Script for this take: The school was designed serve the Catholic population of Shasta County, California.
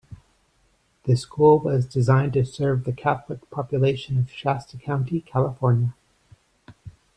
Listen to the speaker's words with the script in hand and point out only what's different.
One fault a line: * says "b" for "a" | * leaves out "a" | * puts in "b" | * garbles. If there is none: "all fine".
* puts in "to"